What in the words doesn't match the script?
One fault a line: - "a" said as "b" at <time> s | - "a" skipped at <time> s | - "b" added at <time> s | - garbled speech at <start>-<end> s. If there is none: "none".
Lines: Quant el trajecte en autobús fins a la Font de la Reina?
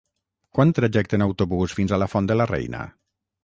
none